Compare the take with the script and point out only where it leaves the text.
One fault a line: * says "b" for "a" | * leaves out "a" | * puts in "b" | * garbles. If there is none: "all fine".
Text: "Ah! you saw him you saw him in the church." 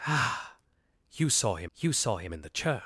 all fine